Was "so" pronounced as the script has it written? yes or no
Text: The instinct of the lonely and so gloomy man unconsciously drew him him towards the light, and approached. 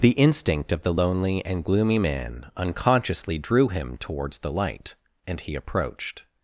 no